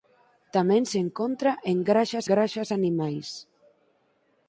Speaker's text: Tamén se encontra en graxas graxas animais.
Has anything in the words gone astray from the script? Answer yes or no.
no